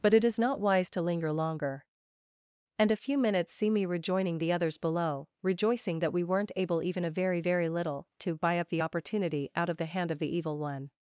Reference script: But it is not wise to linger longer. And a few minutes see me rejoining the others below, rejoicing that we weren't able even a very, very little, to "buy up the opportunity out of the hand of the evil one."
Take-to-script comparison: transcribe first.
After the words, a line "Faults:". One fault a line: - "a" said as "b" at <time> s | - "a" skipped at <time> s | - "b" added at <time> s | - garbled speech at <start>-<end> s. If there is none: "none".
But it is not wise to linger longer. And a few minutes see me rejoining the others below, rejoicing that we weren't able even a very, very little, to "buy up the opportunity out of the hand of the evil one."
Faults:
none